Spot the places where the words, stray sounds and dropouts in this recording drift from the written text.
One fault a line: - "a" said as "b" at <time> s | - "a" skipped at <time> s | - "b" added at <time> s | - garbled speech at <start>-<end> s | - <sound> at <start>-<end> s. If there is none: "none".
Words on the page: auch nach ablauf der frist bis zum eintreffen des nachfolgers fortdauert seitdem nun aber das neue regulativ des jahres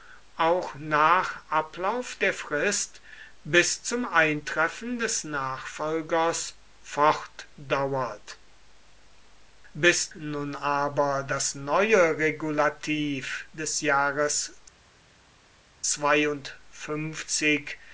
- "seitdem" said as "bis" at 9.7 s